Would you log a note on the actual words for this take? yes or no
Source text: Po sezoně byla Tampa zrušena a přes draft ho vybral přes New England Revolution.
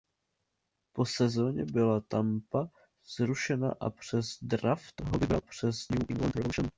no